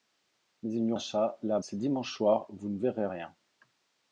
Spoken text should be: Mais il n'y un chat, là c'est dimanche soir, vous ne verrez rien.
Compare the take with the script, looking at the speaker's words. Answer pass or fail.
pass